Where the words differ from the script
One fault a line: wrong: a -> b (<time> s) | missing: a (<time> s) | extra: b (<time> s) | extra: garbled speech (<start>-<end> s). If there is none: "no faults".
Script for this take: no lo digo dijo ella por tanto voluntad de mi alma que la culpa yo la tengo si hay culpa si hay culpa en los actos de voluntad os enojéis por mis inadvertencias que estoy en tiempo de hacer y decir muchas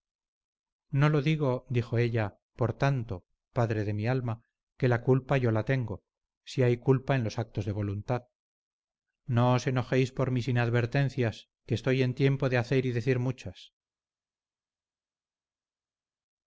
wrong: voluntad -> padre (3.5 s)
missing: si hay culpa (7.2 s)
extra: no (9.3 s)